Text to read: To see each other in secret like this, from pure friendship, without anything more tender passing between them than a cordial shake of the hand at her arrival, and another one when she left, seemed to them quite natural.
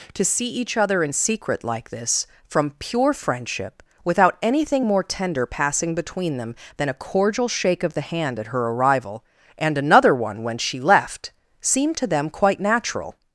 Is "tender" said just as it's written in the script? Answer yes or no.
yes